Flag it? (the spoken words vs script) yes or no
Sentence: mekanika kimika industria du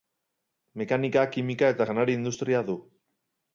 yes